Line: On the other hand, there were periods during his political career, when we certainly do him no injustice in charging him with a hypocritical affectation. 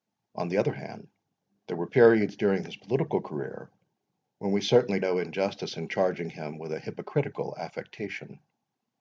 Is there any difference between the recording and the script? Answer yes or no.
yes